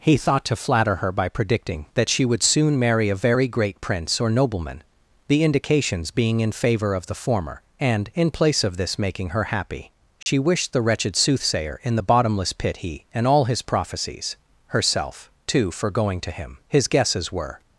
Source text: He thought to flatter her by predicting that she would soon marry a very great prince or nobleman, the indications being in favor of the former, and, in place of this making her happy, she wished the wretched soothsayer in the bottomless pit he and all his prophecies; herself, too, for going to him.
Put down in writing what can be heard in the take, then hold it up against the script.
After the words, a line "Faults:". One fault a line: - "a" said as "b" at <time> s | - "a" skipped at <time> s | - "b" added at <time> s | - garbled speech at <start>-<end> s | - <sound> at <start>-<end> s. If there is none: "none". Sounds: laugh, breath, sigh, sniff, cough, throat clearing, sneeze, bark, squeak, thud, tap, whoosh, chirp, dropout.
He thought to flatter her by predicting that she would soon marry a very great prince or nobleman, the indications being in favor of the former, and, in place of this making her happy, she wished the wretched soothsayer in the bottomless pit he and all his prophecies; herself, too, for going to him. His guesses were
Faults:
- dropout at 10.2-10.3 s
- "His guesses were" added at 16.7 s